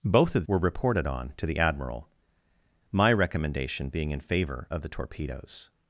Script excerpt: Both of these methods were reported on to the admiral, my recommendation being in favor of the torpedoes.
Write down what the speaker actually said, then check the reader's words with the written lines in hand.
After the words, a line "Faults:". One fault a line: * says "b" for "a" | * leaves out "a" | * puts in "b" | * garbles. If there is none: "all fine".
Both of were reported on to the admiral, my recommendation being in favor of the torpedoes.
Faults:
* leaves out "these methods"